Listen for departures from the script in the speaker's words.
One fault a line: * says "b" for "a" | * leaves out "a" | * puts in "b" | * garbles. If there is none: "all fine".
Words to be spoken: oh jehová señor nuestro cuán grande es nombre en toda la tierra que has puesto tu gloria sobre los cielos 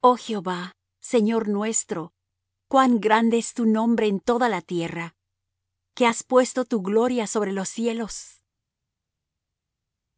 * puts in "tu"